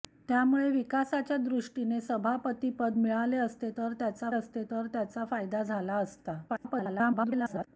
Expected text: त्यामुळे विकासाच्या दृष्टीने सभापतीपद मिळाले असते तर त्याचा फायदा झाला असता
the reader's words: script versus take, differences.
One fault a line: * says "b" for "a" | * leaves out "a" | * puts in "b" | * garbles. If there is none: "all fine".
* puts in "असते तर त्याचा"
* garbles